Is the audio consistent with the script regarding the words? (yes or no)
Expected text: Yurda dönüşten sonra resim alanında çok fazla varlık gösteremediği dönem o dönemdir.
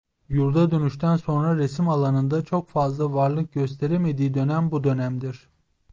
no